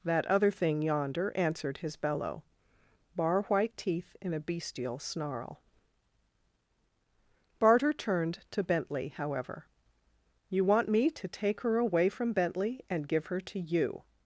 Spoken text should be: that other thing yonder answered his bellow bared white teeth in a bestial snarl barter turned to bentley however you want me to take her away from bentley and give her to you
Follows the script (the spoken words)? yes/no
no